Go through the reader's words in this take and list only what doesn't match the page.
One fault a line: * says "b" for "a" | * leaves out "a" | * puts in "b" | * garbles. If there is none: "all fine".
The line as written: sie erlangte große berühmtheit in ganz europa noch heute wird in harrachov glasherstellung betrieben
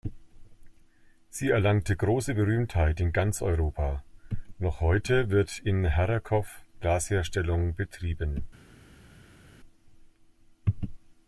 all fine